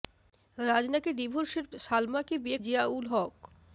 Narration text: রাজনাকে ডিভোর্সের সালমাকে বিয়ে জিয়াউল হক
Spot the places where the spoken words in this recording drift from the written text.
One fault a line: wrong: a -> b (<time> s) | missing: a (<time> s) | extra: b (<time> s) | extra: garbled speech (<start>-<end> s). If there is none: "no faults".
no faults